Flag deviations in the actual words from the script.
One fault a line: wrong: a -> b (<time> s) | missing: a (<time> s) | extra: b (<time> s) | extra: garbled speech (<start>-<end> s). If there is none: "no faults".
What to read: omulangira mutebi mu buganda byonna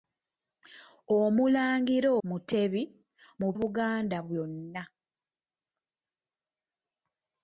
no faults